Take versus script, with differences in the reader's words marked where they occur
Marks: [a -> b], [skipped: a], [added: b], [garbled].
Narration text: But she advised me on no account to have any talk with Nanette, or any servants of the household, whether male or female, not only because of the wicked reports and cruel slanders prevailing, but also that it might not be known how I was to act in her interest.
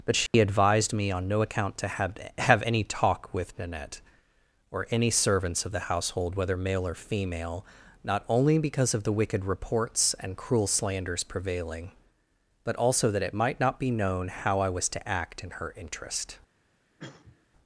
But she advised me on no account to have [added: have] any talk with Nanette, or any servants of the household, whether male or female, not only because of the wicked reports and cruel slanders prevailing, but also that it might not be known how I was to act in her interest.